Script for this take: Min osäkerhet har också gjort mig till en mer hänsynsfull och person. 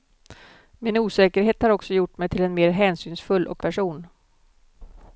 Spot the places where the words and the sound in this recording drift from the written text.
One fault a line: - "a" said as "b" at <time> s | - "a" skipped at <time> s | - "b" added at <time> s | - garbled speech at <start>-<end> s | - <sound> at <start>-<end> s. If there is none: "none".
none